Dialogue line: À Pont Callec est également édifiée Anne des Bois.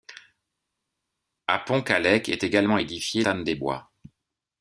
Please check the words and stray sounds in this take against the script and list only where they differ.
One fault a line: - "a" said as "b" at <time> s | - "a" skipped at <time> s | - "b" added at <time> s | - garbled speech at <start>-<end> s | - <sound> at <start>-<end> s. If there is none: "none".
none